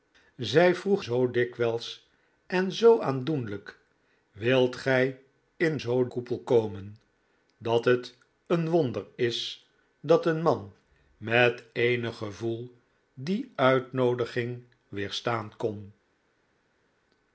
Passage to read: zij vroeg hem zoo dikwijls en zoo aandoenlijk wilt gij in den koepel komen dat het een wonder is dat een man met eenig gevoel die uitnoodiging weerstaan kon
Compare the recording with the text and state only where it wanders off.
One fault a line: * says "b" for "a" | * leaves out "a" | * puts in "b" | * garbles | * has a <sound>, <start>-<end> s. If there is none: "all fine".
* leaves out "hem"
* says "zoo" for "den"